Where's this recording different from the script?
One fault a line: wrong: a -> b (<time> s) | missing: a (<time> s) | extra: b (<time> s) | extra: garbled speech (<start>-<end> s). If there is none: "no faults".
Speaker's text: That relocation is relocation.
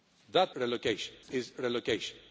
no faults